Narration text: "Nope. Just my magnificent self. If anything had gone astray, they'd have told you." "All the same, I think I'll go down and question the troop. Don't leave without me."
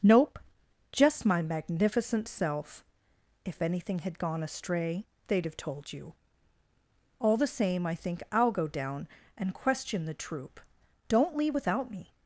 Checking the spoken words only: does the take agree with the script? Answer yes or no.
yes